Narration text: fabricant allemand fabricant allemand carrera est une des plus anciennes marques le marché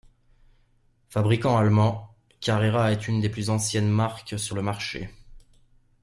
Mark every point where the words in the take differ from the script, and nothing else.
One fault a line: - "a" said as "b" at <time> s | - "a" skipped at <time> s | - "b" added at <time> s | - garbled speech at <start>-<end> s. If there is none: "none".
- "fabricant allemand" skipped at 2.1 s
- "sur" added at 4.4 s